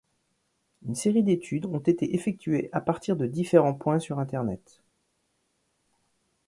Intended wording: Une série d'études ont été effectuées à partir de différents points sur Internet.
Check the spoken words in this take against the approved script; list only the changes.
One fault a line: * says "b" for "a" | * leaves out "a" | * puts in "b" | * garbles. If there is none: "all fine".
all fine